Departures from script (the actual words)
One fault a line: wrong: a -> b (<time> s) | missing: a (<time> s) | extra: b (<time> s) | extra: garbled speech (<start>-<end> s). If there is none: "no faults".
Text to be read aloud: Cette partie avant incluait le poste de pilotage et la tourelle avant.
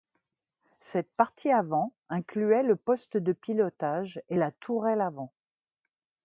no faults